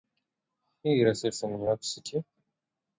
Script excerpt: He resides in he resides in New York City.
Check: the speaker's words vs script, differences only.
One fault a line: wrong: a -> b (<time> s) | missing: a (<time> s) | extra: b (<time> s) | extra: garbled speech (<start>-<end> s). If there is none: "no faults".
missing: he resides in (1.6 s)